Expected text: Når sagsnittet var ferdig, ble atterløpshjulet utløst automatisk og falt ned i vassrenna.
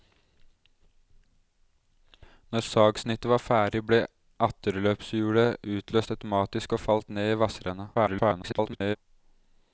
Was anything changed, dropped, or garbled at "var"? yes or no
no